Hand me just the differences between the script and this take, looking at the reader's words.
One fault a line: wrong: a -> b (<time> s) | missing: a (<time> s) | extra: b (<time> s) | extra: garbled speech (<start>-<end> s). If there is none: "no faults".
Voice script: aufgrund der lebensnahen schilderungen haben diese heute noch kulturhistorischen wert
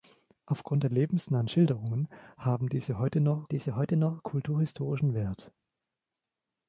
extra: diese heute noch (3.5 s)